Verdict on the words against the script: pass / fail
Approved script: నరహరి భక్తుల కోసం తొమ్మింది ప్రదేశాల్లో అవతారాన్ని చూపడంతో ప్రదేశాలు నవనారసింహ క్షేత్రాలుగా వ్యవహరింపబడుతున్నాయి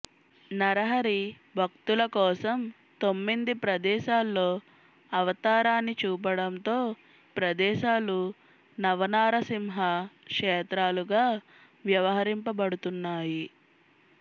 pass